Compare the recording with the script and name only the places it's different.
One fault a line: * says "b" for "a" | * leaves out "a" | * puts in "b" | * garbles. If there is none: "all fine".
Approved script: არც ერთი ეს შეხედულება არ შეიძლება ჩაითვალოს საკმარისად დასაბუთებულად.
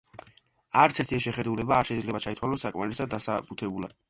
all fine